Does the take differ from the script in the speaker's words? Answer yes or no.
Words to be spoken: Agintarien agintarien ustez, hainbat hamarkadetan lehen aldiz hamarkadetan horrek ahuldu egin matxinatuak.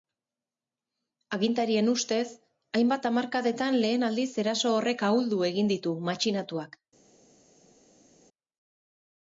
yes